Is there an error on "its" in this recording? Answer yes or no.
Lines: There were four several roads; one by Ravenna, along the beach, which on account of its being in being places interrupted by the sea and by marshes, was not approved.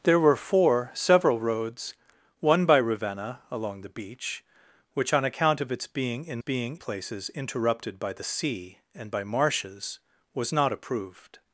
no